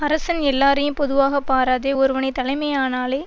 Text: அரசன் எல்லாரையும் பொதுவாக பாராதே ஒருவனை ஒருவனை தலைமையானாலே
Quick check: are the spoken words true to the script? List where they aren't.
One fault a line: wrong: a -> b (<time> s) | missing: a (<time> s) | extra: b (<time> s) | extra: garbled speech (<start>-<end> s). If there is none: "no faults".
missing: ஒருவனை (2.3 s)